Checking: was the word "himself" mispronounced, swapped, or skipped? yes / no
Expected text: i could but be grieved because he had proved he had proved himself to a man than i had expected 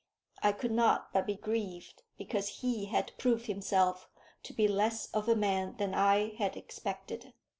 yes